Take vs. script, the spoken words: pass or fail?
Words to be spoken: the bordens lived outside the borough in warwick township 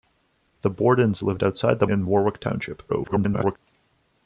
fail